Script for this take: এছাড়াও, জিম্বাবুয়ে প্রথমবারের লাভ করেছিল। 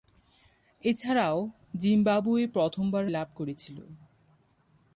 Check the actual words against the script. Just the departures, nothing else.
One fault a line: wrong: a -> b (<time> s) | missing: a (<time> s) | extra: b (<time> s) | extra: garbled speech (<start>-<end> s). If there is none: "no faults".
no faults